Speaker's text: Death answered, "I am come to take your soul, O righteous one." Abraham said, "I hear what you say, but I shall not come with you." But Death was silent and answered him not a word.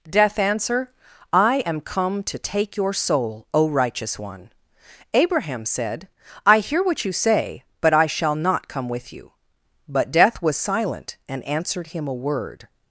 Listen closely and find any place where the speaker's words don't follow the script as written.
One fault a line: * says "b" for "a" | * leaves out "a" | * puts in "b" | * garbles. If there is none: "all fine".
* says "answer" for "answered"
* leaves out "not"